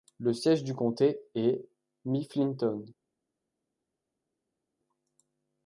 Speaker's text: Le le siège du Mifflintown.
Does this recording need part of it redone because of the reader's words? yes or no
yes